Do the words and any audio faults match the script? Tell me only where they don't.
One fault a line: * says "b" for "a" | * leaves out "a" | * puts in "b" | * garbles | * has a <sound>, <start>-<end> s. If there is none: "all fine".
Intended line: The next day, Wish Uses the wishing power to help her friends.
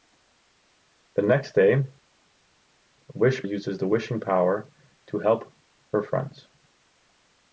all fine